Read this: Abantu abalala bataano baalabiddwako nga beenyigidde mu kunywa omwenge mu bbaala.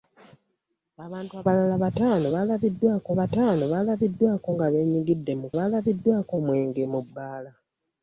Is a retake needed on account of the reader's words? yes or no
yes